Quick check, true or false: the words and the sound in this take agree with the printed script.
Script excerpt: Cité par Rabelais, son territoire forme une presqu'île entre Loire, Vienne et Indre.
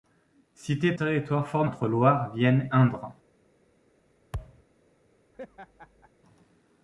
false